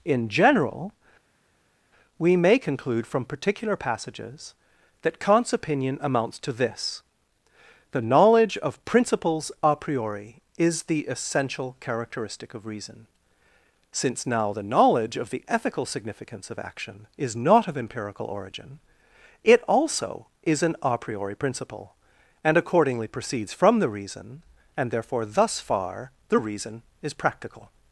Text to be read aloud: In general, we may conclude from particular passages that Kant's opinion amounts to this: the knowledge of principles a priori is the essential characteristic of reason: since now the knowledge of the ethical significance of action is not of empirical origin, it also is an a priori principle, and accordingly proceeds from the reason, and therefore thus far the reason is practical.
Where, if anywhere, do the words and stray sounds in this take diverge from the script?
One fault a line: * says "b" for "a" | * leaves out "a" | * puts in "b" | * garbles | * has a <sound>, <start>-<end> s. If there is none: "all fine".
all fine